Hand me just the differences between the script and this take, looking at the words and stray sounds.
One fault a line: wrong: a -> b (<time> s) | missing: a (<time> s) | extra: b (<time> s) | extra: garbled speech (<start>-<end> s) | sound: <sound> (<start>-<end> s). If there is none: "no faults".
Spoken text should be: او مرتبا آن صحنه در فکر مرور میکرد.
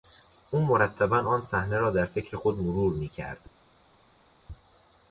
extra: را (1.8 s)
extra: خود (2.3 s)